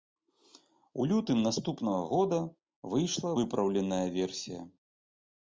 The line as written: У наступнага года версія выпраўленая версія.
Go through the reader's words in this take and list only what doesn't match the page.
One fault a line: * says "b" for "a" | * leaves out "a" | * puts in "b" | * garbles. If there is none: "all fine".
* puts in "лютым"
* says "выйшла" for "версія"